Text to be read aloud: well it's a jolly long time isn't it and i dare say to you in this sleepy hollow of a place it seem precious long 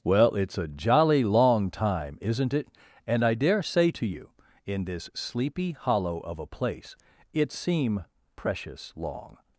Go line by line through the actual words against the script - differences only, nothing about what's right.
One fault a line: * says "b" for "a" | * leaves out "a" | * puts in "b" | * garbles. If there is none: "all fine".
all fine